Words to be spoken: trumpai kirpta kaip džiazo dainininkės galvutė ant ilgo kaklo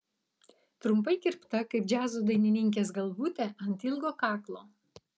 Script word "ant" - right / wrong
right